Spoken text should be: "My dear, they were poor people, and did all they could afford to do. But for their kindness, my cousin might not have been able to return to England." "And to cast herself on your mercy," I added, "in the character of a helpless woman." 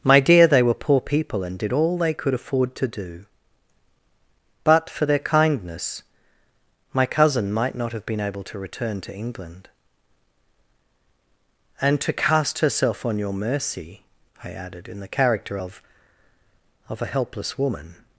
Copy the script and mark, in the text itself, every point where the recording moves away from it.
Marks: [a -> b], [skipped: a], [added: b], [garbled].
"My dear, they were poor people, and did all they could afford to do. But for their kindness, my cousin might not have been able to return to England." "And to cast herself on your mercy," I added, "in the character of [added: of] a helpless woman."